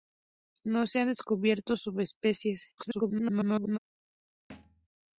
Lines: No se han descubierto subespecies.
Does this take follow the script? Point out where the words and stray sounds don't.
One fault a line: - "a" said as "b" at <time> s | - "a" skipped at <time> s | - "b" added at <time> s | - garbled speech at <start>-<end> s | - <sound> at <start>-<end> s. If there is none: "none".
- garbled speech at 2.8-3.8 s
- thud at 4.5-4.9 s